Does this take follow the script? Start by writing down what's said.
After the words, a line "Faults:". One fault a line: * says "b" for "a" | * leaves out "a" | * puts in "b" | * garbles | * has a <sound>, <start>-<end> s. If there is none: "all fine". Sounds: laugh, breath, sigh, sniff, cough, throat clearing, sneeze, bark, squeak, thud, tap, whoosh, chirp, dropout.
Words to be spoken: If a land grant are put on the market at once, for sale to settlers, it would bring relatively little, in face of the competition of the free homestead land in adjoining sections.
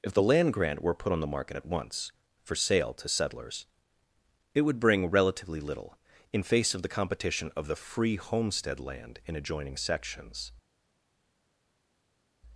If the land grant were put on the market at once, for sale to settlers, it would bring relatively little, in face of the competition of the free homestead land in adjoining sections.
Faults:
* says "the" for "a"
* says "were" for "are"